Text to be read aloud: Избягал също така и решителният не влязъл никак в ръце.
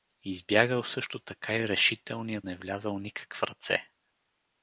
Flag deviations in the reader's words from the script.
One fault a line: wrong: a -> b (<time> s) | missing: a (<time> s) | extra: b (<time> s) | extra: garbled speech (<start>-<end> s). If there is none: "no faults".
no faults